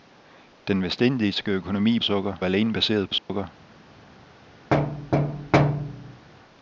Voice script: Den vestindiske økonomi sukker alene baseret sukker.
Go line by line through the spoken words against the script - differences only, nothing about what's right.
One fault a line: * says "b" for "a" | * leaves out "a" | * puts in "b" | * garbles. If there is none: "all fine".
all fine